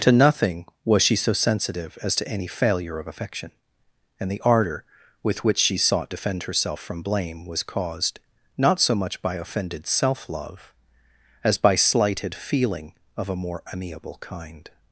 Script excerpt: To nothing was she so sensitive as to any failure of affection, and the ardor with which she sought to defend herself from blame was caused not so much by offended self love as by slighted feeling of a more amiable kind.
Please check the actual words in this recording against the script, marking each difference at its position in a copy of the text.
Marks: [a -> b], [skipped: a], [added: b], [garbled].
To nothing was she so sensitive as to any failure of affection, and the ardor with which she sought [skipped: to] defend herself from blame was caused not so much by offended self love as by slighted feeling of a more amiable kind.